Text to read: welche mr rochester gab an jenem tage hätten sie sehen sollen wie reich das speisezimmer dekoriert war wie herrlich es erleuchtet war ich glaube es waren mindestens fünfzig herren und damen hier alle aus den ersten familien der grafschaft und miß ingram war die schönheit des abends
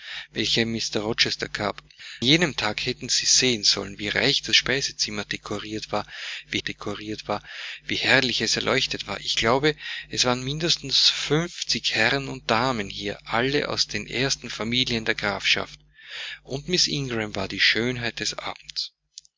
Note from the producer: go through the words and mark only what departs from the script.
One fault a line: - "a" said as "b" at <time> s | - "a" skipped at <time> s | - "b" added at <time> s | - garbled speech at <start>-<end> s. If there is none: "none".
- "an" skipped at 1.8 s
- "dekoriert war wie" added at 6.6 s